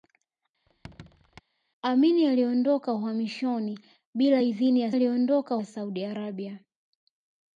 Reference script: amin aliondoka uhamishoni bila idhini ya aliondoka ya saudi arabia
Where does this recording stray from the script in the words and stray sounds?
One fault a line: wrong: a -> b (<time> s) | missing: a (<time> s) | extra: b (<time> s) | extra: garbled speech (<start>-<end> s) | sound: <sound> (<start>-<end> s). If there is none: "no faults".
sound: squeak (0.7-1.4 s)